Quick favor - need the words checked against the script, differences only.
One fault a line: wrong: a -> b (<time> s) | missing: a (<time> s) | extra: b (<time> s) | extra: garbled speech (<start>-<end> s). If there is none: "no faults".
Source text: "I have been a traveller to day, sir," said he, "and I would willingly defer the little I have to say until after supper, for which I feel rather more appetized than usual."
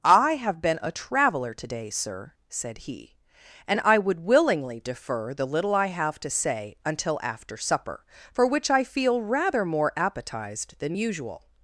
no faults